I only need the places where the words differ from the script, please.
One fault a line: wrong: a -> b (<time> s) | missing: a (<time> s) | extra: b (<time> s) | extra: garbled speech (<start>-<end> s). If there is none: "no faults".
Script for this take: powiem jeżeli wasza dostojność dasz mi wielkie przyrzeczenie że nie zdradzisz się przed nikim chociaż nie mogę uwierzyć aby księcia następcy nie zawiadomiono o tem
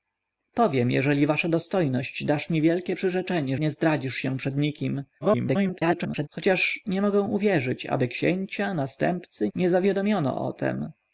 missing: że (3.6 s)
extra: garbled speech (5.2-6.3 s)